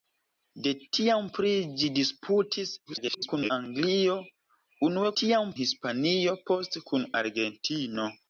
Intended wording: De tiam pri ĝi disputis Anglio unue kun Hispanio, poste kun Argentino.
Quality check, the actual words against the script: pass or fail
fail